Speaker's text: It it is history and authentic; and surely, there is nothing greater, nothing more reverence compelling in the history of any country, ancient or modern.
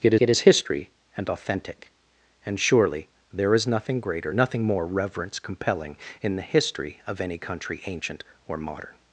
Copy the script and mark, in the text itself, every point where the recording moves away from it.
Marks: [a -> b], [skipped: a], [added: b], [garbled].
It it is history and authentic; and surely, there is nothing greater, nothing more reverence compelling in the history of any country, ancient or modern.